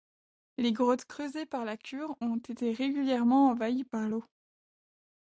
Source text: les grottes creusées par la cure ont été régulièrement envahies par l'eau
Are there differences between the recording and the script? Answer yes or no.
no